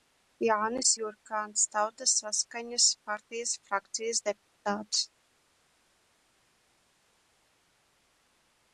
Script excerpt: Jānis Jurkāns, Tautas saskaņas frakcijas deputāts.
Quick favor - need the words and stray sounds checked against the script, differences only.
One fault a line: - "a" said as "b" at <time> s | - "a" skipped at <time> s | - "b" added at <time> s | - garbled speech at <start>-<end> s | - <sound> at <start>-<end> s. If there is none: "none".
- "partijas" added at 3.1 s